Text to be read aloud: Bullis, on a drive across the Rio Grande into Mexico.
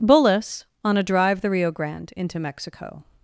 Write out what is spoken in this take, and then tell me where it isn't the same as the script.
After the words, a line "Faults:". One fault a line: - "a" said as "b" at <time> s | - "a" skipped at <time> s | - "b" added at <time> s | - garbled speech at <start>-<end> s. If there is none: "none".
Bullis, on a drive the Rio Grande into Mexico.
Faults:
- "across" skipped at 1.4 s